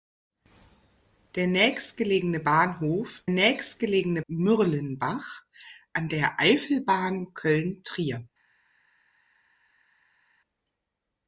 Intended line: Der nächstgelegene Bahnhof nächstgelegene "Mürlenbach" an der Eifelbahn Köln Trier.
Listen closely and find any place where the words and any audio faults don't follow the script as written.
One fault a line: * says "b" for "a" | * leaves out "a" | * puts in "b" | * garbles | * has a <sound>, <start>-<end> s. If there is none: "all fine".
all fine